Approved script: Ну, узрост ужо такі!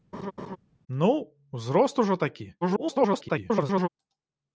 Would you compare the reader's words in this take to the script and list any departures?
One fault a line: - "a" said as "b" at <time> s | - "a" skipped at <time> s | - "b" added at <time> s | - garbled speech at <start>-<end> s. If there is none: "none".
- garbled speech at 2.6-3.9 s